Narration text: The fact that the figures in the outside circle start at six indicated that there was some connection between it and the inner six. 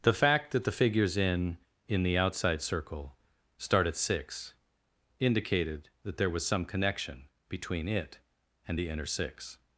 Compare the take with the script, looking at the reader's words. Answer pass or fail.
fail